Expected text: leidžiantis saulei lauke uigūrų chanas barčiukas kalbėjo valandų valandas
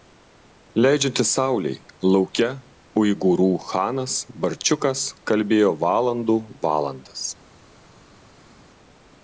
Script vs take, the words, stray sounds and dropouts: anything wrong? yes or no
no